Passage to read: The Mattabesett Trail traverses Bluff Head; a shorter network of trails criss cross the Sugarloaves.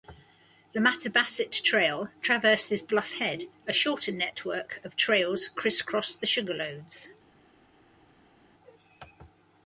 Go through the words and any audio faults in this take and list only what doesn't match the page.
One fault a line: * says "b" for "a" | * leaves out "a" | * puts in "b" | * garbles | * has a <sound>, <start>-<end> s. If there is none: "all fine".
all fine